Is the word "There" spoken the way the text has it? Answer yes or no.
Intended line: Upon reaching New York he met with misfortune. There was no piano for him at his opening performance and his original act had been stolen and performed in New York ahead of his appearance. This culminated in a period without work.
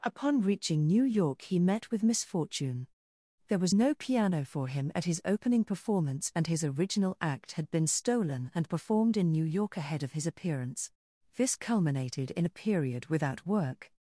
yes